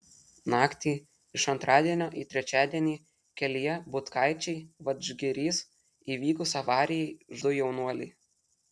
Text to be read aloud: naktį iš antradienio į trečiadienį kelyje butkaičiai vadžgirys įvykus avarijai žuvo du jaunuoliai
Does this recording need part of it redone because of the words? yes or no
yes